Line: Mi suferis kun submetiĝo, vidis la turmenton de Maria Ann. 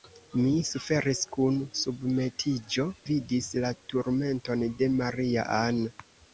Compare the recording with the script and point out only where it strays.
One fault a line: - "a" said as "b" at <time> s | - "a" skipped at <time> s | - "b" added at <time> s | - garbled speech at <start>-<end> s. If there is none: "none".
none